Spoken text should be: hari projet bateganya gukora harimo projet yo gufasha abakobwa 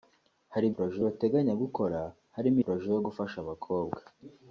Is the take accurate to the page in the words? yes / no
yes